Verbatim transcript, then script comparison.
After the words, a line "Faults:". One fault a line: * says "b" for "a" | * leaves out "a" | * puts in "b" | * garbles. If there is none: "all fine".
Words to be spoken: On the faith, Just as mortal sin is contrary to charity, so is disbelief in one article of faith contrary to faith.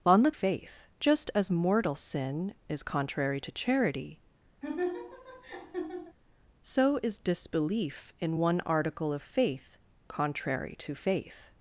On the faith, Just as mortal sin is contrary to charity, so is disbelief in one article of faith contrary to faith.
Faults:
all fine